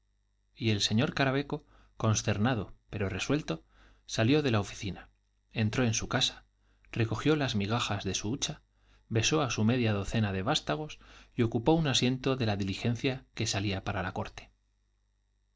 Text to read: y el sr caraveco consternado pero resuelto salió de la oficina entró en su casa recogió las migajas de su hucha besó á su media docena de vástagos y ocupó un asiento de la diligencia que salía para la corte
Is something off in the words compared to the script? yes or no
no